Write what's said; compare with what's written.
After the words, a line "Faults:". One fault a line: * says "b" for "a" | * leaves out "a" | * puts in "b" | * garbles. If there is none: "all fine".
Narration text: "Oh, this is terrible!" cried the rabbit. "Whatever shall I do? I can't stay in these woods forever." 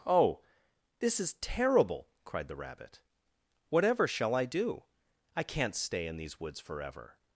"Oh, this is terrible!" cried the rabbit. "Whatever shall I do? I can't stay in these woods forever."
Faults:
all fine